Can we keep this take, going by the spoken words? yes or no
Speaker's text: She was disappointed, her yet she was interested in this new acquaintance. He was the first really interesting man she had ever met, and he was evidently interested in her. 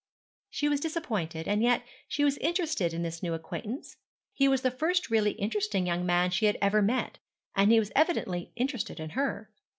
no